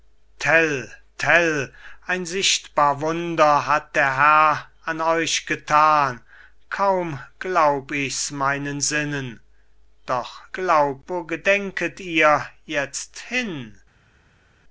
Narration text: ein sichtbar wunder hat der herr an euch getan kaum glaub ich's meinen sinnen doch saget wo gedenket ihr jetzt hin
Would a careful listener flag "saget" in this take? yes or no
yes